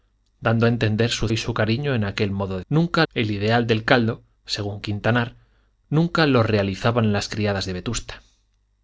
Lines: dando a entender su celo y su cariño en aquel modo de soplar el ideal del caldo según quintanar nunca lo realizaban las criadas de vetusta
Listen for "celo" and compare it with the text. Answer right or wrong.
wrong